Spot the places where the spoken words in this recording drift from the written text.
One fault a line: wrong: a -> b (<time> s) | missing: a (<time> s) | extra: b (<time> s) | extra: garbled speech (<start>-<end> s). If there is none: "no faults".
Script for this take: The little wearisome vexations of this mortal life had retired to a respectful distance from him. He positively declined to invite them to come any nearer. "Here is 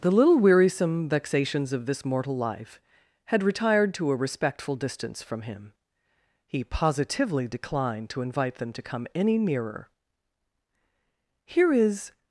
no faults